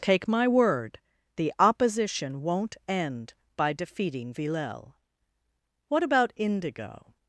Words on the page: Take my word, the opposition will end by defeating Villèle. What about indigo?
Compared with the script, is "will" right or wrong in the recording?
wrong